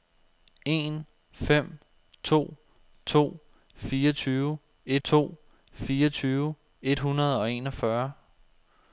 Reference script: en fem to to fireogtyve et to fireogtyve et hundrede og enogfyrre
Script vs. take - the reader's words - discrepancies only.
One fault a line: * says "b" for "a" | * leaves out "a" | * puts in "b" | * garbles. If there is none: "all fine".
all fine